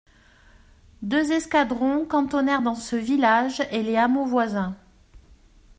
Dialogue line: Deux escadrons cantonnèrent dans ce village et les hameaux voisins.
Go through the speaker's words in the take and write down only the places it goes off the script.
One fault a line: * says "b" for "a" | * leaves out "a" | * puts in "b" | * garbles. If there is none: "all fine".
all fine